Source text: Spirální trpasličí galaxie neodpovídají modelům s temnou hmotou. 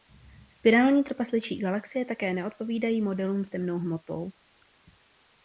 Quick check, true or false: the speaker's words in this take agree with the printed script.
false